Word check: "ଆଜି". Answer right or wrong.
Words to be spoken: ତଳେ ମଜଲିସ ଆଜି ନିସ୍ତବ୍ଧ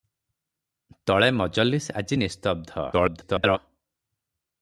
right